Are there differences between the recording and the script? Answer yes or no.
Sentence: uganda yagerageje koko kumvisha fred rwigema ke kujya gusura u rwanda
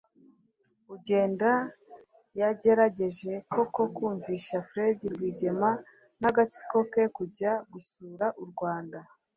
yes